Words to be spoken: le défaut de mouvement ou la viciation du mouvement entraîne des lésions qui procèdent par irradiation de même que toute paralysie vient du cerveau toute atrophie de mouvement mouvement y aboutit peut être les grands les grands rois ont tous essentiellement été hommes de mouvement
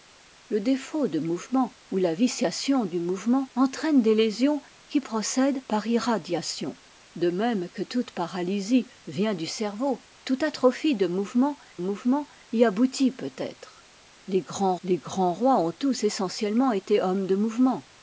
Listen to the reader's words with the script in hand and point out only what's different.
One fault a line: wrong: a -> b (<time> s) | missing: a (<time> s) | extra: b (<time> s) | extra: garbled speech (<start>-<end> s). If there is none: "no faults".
no faults